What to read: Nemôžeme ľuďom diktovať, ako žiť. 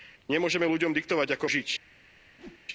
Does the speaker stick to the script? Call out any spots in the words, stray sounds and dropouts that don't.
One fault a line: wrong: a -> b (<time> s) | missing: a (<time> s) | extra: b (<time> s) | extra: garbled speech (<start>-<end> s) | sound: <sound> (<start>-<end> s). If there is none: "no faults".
sound: whoosh (2.4-2.7 s)